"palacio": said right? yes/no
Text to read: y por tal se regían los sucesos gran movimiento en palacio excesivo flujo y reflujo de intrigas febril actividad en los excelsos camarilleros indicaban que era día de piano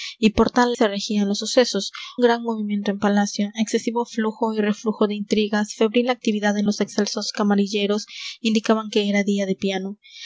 yes